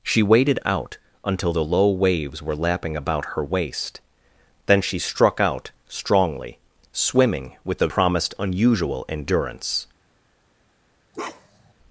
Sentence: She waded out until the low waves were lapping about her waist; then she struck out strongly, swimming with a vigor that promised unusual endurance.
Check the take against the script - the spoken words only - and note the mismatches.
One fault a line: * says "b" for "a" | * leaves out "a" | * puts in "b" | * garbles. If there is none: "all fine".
* leaves out "vigor that"